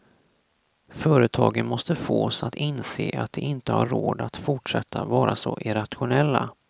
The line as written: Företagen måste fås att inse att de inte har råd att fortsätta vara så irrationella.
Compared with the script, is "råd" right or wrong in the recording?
right